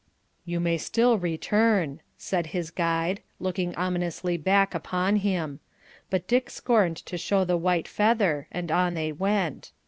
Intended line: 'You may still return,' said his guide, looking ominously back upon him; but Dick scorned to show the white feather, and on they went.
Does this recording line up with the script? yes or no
yes